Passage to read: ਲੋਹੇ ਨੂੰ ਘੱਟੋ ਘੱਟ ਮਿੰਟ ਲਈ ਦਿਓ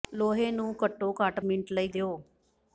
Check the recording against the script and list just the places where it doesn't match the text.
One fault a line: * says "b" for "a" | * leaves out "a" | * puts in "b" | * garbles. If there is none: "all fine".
all fine